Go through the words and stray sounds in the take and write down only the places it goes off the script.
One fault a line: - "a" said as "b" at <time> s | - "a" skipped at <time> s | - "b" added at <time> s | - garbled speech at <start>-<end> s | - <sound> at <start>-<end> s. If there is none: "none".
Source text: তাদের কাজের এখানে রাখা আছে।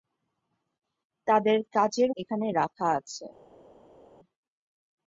none